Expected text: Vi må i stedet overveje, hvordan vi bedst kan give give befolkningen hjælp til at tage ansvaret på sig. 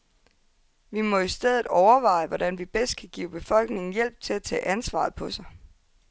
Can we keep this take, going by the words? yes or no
no